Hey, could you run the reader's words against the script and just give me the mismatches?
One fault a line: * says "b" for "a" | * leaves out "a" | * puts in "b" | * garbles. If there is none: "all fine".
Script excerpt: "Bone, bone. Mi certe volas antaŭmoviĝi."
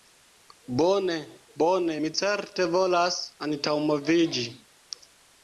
all fine